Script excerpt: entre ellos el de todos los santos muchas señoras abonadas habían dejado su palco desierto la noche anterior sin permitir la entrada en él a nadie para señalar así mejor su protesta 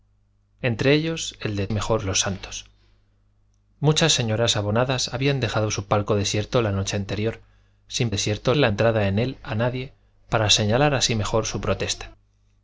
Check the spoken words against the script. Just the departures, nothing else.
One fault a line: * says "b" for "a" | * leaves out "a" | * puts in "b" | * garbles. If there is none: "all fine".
* says "mejor" for "todos"
* says "desierto" for "permitir"